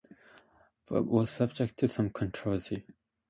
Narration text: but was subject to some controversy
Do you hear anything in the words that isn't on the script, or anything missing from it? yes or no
no